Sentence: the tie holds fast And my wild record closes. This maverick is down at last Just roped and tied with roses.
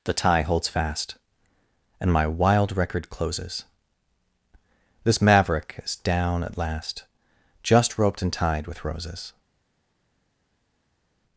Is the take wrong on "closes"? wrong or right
right